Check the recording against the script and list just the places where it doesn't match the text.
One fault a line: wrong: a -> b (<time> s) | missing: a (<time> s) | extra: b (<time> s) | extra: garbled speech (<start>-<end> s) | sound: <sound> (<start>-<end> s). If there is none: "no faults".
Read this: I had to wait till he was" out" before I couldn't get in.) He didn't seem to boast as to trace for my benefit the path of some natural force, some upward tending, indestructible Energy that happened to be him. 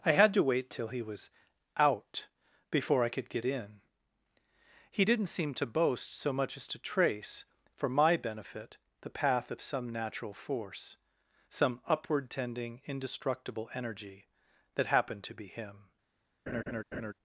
wrong: couldn't -> could (3.1 s)
extra: so much (6.2 s)
sound: laugh (16.5-17.1 s)